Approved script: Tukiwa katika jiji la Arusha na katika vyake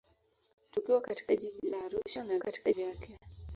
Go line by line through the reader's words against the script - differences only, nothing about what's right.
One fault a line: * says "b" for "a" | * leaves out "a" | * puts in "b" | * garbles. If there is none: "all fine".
all fine